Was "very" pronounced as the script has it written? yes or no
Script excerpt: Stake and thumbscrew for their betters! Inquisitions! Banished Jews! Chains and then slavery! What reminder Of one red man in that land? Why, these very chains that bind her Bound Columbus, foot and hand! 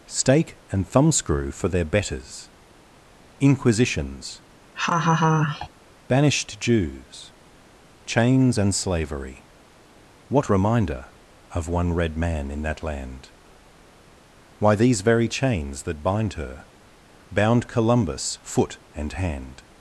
yes